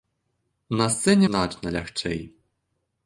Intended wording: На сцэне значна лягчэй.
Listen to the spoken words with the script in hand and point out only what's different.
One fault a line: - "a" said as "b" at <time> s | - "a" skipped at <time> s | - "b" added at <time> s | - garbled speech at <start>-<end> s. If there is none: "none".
none